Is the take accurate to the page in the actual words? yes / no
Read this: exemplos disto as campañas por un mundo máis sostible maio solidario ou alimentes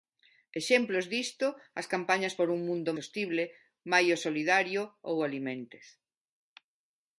no